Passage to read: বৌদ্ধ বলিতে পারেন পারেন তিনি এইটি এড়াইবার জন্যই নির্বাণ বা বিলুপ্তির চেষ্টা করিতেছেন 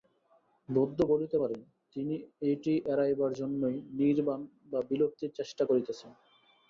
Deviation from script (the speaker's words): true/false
true